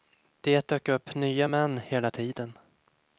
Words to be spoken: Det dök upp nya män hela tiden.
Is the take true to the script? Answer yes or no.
yes